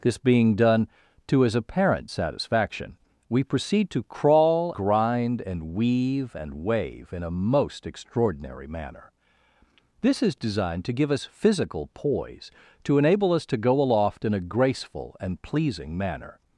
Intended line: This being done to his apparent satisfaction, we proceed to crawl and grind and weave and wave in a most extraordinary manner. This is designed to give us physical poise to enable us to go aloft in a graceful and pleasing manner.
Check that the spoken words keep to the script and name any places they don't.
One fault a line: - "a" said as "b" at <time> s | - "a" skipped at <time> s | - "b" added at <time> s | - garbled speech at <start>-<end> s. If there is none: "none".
- "and" skipped at 4.7 s